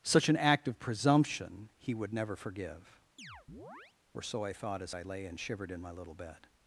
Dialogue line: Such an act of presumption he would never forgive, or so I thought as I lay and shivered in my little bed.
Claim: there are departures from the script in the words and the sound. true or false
true